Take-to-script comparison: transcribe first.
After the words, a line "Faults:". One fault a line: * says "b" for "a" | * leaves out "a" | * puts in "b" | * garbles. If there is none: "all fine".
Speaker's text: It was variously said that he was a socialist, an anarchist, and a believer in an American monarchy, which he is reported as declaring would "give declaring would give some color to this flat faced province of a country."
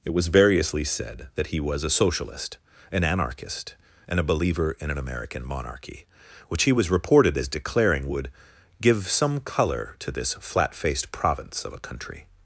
It was variously said that he was a socialist, an anarchist, and a believer in an American monarchy, which he was reported as declaring would "give some color to this flat faced province of a country."
Faults:
* says "was" for "is"
* leaves out "declaring would give"